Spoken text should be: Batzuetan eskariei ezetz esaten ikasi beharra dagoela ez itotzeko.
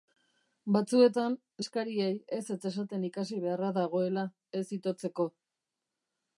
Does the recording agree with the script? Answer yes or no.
yes